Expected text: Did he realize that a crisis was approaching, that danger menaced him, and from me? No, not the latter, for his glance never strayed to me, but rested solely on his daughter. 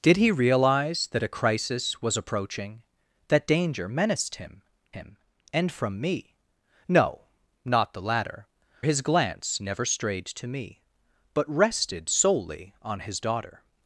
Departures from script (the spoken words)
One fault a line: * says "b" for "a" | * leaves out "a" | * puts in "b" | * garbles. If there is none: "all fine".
* puts in "him"
* leaves out "for"